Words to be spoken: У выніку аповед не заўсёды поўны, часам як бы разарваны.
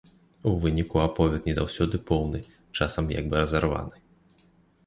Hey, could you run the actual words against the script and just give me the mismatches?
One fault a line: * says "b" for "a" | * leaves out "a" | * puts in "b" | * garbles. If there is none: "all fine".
all fine